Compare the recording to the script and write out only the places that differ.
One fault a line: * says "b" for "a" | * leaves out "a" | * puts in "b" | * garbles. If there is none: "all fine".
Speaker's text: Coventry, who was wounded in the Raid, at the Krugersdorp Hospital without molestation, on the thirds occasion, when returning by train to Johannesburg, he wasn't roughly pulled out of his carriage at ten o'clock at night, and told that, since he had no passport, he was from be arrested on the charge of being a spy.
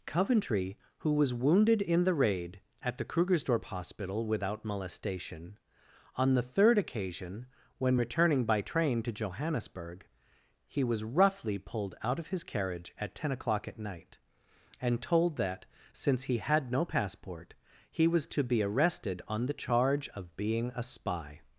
* says "third" for "thirds"
* says "was" for "wasn't"
* says "to" for "from"